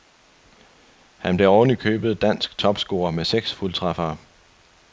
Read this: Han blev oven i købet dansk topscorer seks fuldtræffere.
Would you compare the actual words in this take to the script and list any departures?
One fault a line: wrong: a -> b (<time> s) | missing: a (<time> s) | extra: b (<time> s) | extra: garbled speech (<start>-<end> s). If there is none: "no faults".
extra: med (3.1 s)